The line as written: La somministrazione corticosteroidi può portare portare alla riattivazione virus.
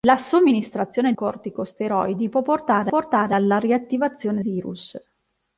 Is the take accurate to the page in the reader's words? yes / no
yes